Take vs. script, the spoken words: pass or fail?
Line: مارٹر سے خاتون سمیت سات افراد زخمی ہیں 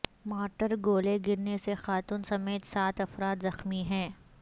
fail